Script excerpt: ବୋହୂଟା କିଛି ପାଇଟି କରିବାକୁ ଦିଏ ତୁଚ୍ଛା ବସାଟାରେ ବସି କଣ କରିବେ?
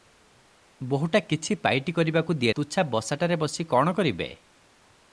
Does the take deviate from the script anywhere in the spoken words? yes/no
no